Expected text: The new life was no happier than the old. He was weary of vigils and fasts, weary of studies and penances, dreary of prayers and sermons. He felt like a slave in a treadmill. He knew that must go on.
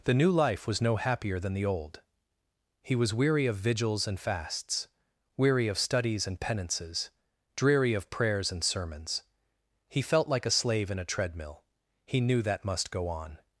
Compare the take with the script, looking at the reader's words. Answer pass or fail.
pass